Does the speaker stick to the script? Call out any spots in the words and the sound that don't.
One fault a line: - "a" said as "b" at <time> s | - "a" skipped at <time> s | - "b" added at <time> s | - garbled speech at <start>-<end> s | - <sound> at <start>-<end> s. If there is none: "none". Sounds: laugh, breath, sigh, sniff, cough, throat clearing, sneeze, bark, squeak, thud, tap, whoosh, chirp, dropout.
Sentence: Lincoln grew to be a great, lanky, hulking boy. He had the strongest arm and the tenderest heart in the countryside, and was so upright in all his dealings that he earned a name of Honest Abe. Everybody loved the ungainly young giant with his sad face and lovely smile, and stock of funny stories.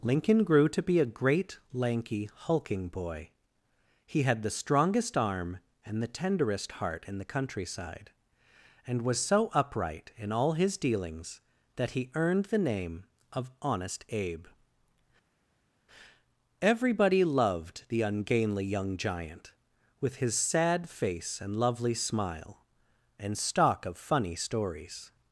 - "a" said as "the" at 12.4 s